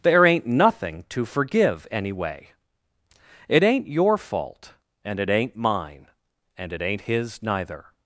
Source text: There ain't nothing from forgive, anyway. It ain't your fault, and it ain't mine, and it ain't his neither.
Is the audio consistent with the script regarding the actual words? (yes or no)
no